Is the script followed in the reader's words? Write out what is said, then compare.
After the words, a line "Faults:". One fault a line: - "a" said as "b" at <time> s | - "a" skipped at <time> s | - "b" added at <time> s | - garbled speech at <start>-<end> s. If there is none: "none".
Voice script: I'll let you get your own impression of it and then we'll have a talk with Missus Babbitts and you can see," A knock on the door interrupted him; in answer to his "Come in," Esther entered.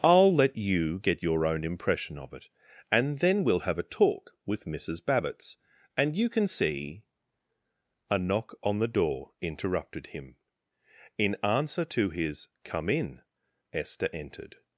I'll let you get your own impression of it and then we'll have a talk with Missus Babbitts and you can see," A knock on the door interrupted him; in answer to his "Come in," Esther entered.
Faults:
none